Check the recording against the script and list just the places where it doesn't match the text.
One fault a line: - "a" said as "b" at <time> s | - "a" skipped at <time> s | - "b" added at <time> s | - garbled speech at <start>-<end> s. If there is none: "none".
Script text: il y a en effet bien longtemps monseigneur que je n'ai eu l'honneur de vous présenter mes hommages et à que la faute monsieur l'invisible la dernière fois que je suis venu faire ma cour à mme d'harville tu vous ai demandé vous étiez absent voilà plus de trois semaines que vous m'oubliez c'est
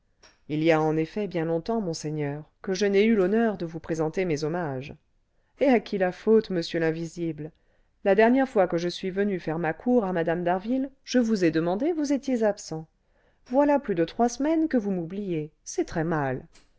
- "que" said as "qui" at 5.8 s
- "tu" said as "je" at 11.0 s